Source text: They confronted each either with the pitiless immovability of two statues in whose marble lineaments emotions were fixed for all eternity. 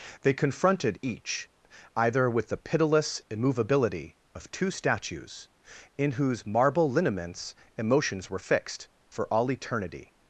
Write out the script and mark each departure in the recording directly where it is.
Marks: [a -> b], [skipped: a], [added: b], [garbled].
They confronted each either with the pitiless immovability of two statues in whose marble lineaments emotions were fixed for all eternity.